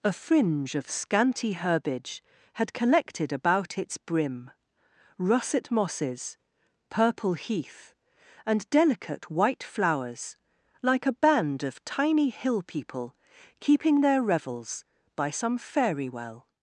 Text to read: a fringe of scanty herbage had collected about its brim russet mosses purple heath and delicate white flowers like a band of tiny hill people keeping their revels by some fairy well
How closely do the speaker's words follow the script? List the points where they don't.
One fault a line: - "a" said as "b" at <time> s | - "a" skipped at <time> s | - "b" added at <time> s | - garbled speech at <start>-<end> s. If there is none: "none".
none